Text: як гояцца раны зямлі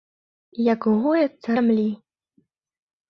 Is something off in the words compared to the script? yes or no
yes